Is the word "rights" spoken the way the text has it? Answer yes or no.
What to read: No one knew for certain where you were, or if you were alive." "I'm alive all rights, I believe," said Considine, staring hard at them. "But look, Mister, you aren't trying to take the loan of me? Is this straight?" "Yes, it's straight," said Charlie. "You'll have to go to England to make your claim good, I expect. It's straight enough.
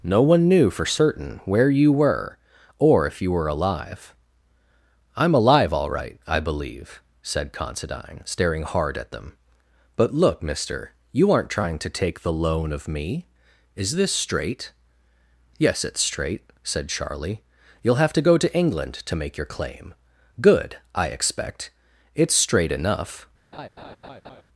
no